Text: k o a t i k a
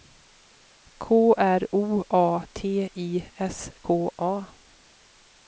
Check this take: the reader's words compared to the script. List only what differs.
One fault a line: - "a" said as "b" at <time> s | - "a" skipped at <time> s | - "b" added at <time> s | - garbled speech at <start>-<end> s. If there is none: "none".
- "r" added at 1.4 s
- "s" added at 3.4 s